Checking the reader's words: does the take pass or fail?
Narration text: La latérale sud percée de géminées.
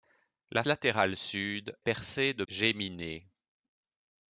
pass